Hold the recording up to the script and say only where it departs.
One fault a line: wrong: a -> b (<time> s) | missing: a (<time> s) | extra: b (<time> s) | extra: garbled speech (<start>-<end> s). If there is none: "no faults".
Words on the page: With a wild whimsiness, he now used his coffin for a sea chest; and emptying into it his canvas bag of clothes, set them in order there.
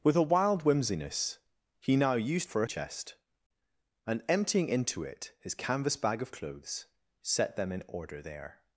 missing: his coffin (2.5 s)
missing: sea (2.7 s)